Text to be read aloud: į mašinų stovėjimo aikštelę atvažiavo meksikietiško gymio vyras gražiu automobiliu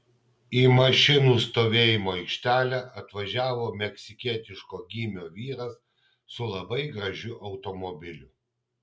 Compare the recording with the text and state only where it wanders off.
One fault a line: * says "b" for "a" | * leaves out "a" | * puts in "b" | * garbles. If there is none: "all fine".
* puts in "su labai"